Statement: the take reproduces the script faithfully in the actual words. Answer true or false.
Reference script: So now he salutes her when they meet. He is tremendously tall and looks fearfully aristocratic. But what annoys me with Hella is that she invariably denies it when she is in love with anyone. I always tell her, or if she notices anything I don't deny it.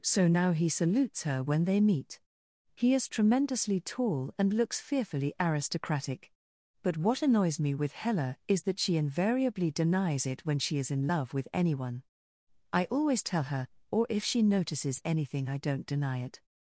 true